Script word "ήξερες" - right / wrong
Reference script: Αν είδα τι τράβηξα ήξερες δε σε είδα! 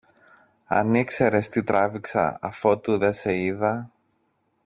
wrong